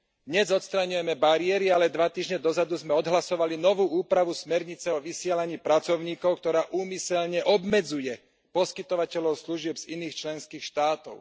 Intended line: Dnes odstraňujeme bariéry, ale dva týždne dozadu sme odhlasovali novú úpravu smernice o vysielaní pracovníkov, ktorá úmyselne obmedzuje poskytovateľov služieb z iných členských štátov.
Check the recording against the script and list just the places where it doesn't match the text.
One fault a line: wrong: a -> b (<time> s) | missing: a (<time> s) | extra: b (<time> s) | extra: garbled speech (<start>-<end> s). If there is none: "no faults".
no faults